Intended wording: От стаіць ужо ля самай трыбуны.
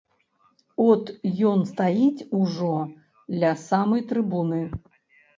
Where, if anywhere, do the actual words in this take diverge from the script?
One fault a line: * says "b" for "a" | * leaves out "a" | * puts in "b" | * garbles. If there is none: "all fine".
* puts in "ён"